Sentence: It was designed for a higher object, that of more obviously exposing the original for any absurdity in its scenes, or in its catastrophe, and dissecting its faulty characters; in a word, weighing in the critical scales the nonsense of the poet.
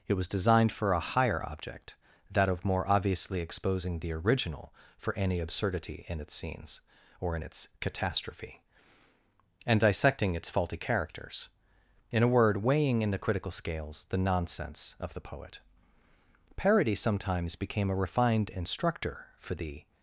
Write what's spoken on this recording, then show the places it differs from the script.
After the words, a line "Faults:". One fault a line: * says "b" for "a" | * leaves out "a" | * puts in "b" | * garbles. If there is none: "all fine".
It was designed for a higher object, that of more obviously exposing the original for any absurdity in its scenes, or in its catastrophe, and dissecting its faulty characters; in a word, weighing in the critical scales the nonsense of the poet. Parody sometimes became a refined instructor for the
Faults:
* puts in "Parody sometimes became a refined instructor for the"